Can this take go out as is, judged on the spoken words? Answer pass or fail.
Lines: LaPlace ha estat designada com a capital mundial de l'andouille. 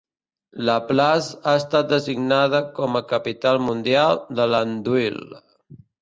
pass